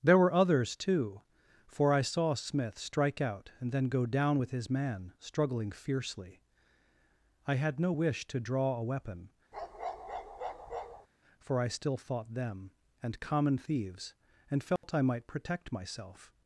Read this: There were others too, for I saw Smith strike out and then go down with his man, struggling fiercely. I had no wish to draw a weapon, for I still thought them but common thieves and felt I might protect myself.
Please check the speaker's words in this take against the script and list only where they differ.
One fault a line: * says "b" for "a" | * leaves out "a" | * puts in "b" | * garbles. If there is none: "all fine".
* says "and" for "but"